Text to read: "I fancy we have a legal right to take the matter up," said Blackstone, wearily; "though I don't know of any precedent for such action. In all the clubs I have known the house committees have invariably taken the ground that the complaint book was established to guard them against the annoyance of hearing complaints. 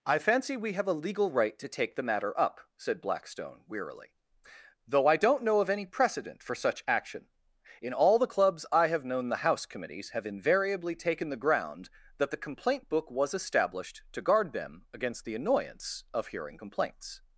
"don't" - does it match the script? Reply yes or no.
yes